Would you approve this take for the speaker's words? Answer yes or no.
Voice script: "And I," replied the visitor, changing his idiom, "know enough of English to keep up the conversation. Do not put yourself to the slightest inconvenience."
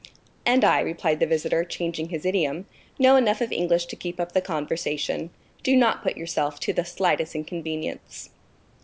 yes